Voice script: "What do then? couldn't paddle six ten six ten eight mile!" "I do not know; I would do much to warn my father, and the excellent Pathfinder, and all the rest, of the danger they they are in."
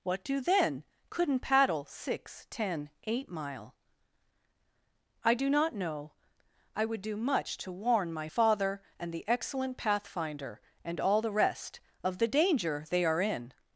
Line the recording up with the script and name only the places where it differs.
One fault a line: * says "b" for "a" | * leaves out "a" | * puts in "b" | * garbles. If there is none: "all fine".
* leaves out "six ten"
* leaves out "they"